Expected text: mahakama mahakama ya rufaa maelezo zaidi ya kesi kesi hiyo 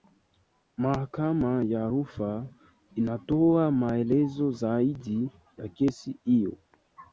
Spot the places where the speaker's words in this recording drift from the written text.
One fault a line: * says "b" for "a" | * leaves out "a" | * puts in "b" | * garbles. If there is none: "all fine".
* leaves out "mahakama"
* puts in "inatoa"
* leaves out "kesi"